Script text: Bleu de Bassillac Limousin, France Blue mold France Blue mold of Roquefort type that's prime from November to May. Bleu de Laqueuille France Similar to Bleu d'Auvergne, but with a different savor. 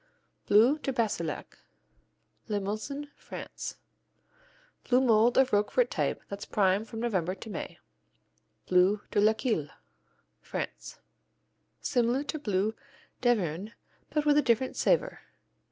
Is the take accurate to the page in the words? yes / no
no